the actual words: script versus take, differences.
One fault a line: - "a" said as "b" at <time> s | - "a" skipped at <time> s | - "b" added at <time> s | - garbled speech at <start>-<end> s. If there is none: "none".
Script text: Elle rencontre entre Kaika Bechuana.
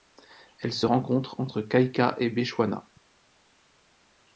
- "se" added at 0.7 s
- "et" added at 2.2 s